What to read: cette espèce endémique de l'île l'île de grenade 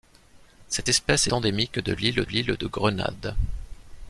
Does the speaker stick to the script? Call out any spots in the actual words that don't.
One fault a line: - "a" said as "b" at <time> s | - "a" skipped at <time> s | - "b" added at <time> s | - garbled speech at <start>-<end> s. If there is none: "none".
none